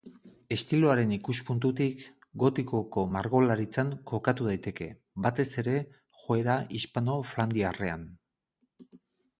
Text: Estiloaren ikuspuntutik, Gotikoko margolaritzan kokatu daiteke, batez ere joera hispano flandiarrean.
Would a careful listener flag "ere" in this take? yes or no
no